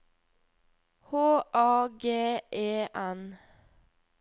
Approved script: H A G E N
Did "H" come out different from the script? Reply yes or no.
no